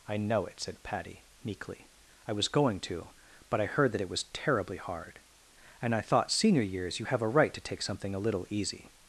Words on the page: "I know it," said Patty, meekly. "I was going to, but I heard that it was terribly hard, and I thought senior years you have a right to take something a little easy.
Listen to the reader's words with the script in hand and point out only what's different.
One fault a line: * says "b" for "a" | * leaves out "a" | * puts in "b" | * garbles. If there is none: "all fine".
all fine